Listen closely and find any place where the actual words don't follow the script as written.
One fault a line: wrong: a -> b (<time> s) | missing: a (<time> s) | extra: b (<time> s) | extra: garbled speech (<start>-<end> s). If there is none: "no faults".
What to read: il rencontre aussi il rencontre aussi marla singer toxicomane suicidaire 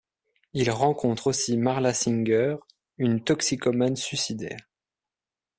missing: il rencontre aussi (1.6 s)
extra: une (3.0 s)